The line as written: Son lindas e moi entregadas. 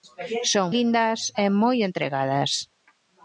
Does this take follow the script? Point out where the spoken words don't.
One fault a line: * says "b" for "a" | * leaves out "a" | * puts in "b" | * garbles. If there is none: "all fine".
all fine